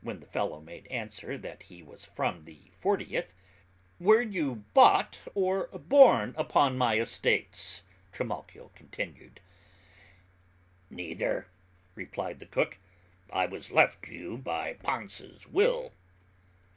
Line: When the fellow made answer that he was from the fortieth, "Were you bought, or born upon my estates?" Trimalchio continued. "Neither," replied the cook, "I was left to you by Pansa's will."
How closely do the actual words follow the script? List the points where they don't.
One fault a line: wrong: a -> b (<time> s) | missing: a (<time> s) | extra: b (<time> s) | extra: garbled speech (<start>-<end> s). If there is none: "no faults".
no faults